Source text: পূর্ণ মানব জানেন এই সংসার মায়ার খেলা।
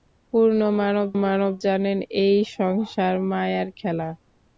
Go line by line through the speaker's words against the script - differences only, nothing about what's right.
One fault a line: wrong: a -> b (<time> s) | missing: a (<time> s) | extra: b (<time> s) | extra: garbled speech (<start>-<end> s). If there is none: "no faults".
extra: মানব (1.2 s)